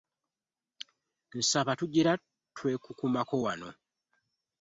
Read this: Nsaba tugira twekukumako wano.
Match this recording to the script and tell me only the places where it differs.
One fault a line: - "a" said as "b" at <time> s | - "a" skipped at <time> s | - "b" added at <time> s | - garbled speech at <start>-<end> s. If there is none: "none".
none